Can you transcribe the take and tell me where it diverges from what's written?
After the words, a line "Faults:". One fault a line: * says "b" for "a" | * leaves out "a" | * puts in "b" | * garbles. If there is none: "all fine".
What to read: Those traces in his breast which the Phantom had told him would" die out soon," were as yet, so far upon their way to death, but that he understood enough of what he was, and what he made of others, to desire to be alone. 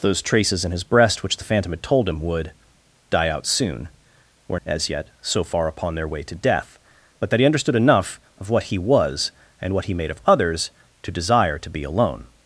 Those traces in his breast which the Phantom had told him would" die out soon," were as yet, so far upon their way to death, but that he understood enough of what he was, and what he made of others, to desire to be alone.
Faults:
all fine